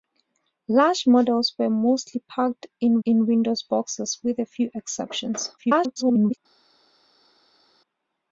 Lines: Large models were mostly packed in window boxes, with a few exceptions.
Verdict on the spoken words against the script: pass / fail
fail